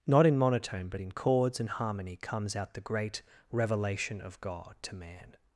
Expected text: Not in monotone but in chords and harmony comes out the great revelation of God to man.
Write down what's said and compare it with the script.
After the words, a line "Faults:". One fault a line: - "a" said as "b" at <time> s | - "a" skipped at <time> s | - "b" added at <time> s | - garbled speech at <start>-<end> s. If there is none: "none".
Not in monotone but in chords and harmony comes out the great revelation of God to man.
Faults:
none